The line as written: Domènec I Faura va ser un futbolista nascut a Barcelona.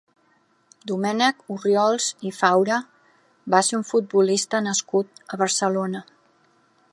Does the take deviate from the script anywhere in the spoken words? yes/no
yes